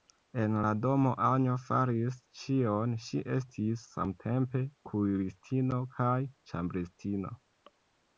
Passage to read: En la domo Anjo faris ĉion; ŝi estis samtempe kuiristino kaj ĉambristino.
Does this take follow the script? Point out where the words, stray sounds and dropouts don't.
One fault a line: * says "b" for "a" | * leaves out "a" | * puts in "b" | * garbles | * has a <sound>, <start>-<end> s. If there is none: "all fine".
all fine